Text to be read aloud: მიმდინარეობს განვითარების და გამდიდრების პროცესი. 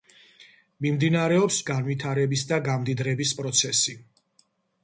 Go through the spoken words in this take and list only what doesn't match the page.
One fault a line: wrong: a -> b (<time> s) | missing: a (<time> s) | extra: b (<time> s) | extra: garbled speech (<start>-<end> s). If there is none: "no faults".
no faults